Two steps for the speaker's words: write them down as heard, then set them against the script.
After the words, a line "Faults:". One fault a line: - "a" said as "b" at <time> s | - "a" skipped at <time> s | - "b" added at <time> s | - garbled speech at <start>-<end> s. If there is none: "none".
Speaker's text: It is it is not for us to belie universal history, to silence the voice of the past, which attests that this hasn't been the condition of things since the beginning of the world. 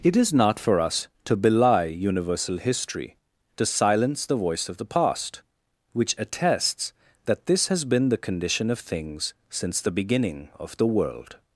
It is not for us to belie universal history, to silence the voice of the past, which attests that this has been the condition of things since the beginning of the world.
Faults:
- "it is" skipped at 0.3 s
- "hasn't" said as "has" at 7.7 s